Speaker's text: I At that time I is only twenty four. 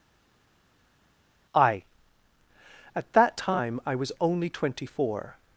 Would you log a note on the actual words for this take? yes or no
yes